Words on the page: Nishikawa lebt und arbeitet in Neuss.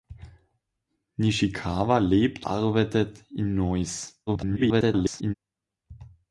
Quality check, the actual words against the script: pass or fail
fail